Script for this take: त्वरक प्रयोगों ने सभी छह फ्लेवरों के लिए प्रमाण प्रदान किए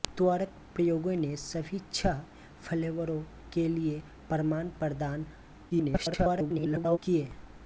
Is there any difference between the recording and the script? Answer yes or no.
yes